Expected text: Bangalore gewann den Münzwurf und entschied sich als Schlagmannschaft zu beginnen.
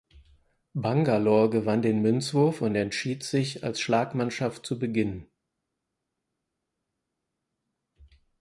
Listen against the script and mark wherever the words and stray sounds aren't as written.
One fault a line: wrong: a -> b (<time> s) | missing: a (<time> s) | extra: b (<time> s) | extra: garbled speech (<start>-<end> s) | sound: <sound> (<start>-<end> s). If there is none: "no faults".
no faults